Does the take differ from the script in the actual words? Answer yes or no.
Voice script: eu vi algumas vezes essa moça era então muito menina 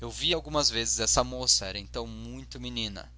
no